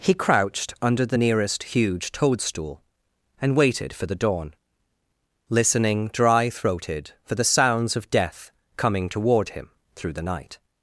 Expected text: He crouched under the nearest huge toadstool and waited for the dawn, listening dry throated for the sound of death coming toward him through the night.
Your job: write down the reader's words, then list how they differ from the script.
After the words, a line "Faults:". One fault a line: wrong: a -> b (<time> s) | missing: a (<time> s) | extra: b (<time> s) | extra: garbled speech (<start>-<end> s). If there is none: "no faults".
He crouched under the nearest huge toadstool and waited for the dawn, listening dry throated for the sounds of death coming toward him through the night.
Faults:
wrong: sound -> sounds (7.4 s)